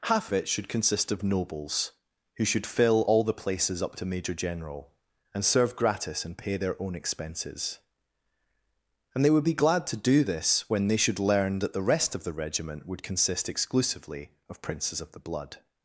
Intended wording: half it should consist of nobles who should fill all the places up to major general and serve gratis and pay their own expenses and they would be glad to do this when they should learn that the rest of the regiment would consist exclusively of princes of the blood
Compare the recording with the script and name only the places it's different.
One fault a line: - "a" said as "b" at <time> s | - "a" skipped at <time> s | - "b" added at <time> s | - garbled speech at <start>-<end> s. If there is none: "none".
none